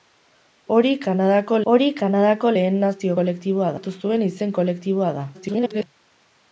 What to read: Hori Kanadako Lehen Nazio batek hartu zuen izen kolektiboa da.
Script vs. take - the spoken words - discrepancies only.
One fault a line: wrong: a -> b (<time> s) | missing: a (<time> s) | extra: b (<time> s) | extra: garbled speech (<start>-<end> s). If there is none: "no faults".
extra: hori Kanadako (1.7 s)
wrong: batek -> kolektiboa (3.2 s)
extra: garbled speech (5.3-5.9 s)